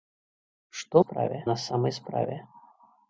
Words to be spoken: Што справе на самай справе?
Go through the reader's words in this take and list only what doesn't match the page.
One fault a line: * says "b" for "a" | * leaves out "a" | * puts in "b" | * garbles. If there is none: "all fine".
all fine